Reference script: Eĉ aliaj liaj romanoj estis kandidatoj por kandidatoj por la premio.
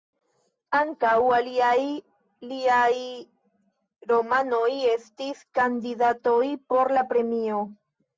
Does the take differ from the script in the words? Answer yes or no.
yes